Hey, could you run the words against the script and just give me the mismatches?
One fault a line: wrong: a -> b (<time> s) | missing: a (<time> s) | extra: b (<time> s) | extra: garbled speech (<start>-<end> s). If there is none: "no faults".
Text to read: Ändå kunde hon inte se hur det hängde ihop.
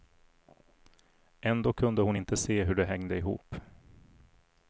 no faults